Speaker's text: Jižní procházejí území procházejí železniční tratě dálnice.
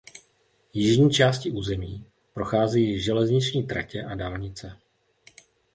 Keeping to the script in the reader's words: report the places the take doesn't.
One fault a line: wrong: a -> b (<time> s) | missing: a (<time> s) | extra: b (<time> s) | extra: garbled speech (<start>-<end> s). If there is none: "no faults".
wrong: procházejí -> částí (1.1 s)
extra: a (4.0 s)